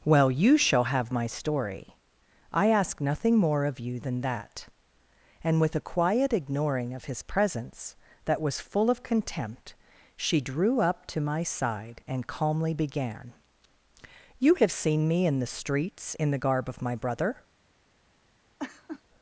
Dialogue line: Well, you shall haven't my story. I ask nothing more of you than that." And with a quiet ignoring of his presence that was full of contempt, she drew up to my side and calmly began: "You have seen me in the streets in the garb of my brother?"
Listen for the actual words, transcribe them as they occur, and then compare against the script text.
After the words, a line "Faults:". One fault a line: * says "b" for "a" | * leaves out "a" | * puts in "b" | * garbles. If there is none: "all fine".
Well, you shall have my story. I ask nothing more of you than that." And with a quiet ignoring of his presence that was full of contempt, she drew up to my side and calmly began: "You have seen me in the streets in the garb of my brother?"
Faults:
* says "have" for "haven't"